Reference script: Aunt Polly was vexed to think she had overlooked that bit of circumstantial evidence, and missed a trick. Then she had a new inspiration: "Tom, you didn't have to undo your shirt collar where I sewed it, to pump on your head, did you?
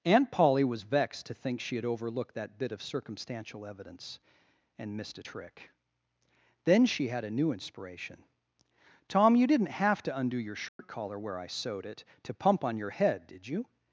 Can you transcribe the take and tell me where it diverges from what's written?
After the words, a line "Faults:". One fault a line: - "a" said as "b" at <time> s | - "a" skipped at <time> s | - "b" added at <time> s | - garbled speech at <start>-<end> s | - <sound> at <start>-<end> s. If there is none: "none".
Aunt Polly was vexed to think she had overlooked that bit of circumstantial evidence, and missed a trick. Then she had a new inspiration: "Tom, you didn't have to undo your shirt collar where I sewed it, to pump on your head, did you?
Faults:
- dropout at 10.7-10.8 s